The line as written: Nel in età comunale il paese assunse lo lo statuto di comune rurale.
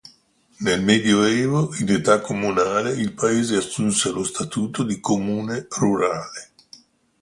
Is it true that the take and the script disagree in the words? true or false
true